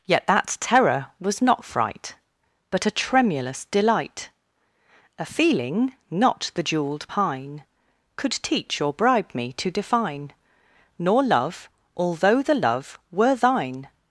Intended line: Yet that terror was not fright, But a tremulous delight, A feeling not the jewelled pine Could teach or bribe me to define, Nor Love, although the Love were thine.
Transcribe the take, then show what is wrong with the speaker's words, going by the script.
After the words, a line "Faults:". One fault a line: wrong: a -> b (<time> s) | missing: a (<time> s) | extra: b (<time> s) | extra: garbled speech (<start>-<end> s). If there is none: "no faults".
Yet that terror was not fright, But a tremulous delight, A feeling not the jewelled pine Could teach or bribe me to define, Nor Love, although the Love were thine.
Faults:
no faults